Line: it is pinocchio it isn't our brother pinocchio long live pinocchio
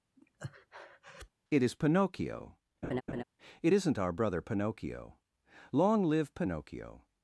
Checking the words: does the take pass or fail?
pass